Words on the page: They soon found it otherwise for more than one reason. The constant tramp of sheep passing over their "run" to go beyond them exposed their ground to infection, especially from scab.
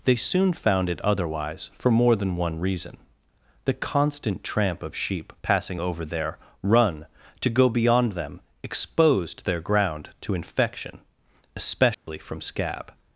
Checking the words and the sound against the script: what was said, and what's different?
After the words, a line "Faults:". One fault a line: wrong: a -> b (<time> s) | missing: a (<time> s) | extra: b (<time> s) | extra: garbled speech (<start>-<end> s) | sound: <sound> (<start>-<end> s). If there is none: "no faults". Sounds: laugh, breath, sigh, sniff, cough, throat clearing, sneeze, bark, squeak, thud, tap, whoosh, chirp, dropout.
They soon found it otherwise for more than one reason. The constant tramp of sheep passing over their "run" to go beyond them exposed their ground to infection, especially from scab.
Faults:
sound: dropout (11.9-12.1 s)